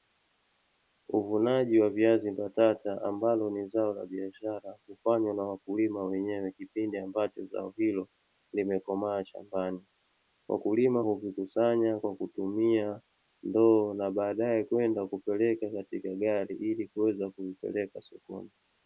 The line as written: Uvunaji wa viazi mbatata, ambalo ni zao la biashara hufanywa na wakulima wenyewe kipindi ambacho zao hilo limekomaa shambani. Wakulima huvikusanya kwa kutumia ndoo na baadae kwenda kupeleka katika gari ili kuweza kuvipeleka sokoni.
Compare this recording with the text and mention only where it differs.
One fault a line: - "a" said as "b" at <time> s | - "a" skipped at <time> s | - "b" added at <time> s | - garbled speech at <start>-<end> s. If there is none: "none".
none